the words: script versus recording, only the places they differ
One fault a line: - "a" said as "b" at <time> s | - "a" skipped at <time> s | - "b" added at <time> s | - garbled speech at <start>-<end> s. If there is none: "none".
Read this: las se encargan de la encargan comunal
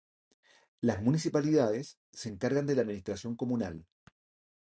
- "municipalidades" added at 1.0 s
- "encargan" said as "administración" at 2.8 s